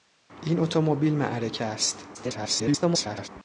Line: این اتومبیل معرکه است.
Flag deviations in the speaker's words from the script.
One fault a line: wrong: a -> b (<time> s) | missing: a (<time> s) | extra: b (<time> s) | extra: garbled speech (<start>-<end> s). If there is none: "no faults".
extra: garbled speech (2.1-3.3 s)